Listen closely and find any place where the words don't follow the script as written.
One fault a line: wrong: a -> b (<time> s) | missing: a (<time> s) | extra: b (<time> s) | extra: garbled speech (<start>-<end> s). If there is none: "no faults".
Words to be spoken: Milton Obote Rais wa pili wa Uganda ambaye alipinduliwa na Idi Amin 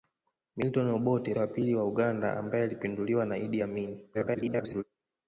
missing: Rais (1.3 s)
extra: garbled speech (4.1-4.8 s)